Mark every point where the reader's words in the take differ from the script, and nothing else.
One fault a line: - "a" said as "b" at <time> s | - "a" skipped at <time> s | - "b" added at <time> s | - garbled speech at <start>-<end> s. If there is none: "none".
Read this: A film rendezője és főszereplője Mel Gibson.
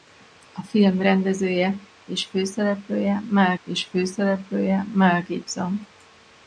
- "és főszereplője Mel" added at 3.7 s